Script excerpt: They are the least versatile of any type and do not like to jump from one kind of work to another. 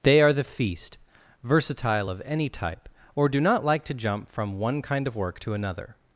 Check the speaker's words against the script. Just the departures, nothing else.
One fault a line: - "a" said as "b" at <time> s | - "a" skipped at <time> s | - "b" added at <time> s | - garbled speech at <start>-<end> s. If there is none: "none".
- "least" said as "feast" at 0.4 s
- "and" said as "or" at 3.2 s